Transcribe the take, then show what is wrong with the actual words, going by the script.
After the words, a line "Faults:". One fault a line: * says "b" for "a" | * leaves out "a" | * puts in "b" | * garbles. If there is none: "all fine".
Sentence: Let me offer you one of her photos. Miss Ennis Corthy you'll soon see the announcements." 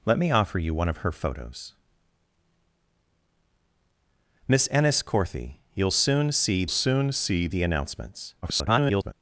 Let me offer you one of her photos. Miss Ennis Corthy you'll soon see soon see the announcements." [garbled]
Faults:
* puts in "soon see"
* garbles